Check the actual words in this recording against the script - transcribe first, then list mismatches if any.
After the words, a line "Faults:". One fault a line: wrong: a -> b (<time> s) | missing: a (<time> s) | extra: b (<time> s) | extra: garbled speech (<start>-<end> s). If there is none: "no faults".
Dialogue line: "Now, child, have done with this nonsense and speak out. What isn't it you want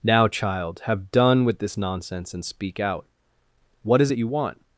"Now, child, have done with this nonsense and speak out. What is it you want
Faults:
wrong: isn't -> is (4.0 s)